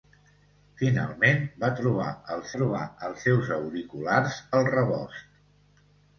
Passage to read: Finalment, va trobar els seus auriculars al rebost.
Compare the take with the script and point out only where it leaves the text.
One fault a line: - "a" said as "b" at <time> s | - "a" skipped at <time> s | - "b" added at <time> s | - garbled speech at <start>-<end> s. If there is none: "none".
- "trobar els" added at 2.6 s